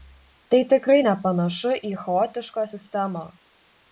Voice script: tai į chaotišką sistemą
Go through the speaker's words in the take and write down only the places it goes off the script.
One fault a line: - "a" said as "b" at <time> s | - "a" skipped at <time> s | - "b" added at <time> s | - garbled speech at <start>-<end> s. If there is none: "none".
- "tikrai nepanašu" added at 0.7 s